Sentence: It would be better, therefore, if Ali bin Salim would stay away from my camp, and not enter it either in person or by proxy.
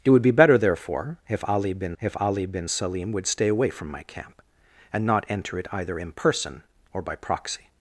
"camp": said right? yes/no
yes